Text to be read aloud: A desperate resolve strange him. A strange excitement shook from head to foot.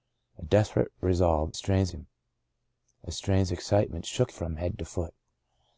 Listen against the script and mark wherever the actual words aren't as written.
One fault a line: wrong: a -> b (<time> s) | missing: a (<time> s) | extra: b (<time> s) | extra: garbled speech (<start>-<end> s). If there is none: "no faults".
no faults